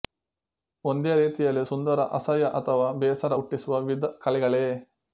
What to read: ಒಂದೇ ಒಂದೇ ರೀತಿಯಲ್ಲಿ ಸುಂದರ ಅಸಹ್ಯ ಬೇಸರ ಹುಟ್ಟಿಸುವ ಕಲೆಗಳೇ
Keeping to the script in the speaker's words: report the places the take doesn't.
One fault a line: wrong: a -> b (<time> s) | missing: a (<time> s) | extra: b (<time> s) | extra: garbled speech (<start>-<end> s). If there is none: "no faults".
missing: ಒಂದೇ (1.1 s)
extra: ಅಥವಾ (2.6 s)
extra: ವಿವಿಧ (3.8 s)